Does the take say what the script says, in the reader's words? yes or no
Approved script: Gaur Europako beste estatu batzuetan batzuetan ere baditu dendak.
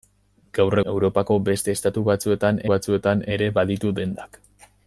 yes